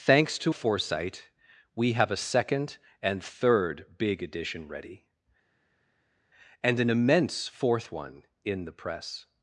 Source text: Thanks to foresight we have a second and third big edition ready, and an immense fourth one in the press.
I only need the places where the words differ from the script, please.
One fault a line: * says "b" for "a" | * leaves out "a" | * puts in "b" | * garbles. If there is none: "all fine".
all fine